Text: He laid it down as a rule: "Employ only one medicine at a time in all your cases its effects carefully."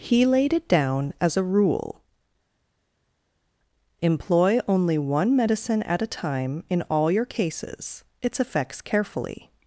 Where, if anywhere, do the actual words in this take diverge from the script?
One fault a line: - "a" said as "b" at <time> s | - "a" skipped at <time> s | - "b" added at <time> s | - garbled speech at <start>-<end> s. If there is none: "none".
none